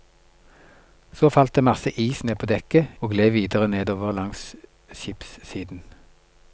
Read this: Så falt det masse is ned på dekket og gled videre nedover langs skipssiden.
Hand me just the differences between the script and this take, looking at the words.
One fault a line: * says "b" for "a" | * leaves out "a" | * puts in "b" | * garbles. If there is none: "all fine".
all fine